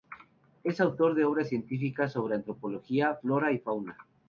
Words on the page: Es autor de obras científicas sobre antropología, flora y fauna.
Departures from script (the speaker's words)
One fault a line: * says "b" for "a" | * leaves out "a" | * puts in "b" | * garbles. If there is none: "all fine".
all fine